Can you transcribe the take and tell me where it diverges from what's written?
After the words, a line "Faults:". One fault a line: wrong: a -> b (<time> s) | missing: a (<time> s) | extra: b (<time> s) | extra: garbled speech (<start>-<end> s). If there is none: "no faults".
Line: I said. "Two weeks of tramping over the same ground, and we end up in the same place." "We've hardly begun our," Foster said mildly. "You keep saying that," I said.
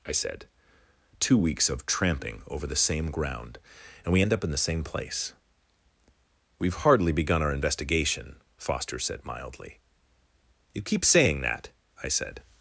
I said. "Two weeks of tramping over the same ground, and we end up in the same place." "We've hardly begun our investigation," Foster said mildly. "You keep saying that," I said.
Faults:
extra: investigation (7.5 s)